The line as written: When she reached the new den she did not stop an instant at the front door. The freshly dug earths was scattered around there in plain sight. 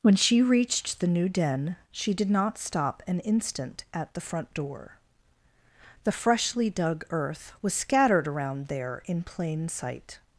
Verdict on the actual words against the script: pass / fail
fail